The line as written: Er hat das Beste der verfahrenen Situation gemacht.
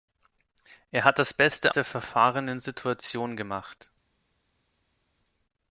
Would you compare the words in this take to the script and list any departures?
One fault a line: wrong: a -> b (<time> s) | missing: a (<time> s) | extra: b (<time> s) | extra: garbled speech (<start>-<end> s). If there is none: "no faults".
no faults